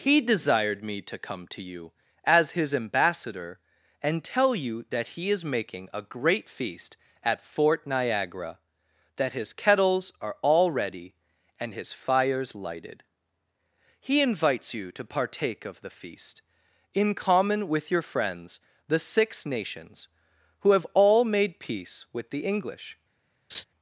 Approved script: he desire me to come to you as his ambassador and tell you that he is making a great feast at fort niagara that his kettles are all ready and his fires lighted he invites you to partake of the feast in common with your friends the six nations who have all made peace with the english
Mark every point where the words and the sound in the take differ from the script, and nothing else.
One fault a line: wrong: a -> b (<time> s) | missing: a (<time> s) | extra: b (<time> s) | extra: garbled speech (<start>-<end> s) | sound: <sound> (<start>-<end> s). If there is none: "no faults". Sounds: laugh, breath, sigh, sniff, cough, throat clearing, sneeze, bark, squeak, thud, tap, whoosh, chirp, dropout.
wrong: desire -> desired (0.2 s)
sound: laugh (23.5-23.6 s)